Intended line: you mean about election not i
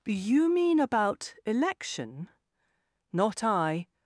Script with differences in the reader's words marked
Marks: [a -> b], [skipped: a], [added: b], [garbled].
you mean about election not i